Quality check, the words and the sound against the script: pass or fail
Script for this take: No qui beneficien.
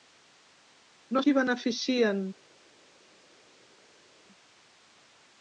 pass